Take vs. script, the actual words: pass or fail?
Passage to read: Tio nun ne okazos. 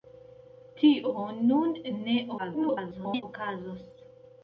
fail